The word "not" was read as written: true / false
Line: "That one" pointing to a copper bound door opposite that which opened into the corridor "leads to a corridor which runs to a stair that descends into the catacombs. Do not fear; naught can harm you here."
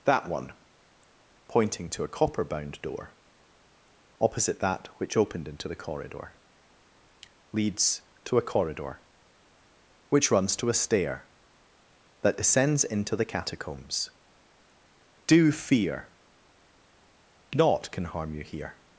false